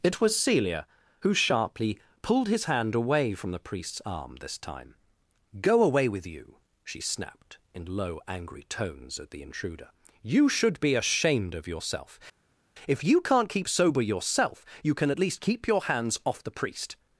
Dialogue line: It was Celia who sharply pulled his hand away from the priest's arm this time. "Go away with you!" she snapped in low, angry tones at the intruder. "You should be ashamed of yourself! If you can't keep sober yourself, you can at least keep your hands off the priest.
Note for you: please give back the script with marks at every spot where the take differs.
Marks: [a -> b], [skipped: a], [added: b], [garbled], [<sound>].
It was Celia who sharply pulled his hand away from the priest's arm this time. "Go away with you!" she snapped in low, angry tones at the intruder. "You should be ashamed of yourself! If you can't keep sober yourself, you can at least keep your hands off the priest.